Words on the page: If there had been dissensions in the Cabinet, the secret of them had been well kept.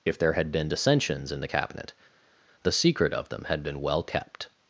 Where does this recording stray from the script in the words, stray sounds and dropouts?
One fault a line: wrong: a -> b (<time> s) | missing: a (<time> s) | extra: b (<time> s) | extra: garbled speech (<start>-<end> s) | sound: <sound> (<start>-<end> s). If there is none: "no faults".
no faults